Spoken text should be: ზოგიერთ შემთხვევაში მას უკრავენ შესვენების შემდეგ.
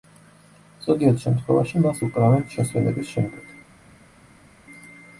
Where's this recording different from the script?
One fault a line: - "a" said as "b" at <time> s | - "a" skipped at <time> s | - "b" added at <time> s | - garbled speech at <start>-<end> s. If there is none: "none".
none